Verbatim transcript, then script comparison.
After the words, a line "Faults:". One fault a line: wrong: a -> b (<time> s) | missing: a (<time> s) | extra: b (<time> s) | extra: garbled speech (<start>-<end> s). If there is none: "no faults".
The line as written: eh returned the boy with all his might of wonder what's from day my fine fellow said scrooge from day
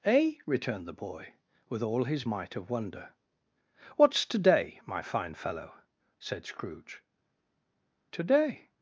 eh returned the boy with all his might of wonder what's to day my fine fellow said scrooge to day
Faults:
wrong: from -> to (4.3 s)
wrong: from -> to (8.1 s)